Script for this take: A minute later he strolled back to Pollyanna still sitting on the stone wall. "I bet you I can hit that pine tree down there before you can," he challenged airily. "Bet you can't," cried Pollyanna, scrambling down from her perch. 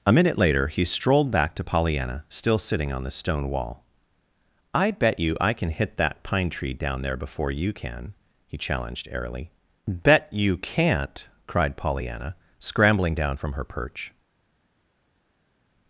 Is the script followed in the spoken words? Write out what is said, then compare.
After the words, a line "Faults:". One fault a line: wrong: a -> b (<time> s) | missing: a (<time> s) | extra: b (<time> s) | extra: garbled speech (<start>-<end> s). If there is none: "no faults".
A minute later he strolled back to Pollyanna still sitting on the stone wall. "I bet you I can hit that pine tree down there before you can," he challenged airily. "Bet you can't," cried Pollyanna, scrambling down from her perch.
Faults:
no faults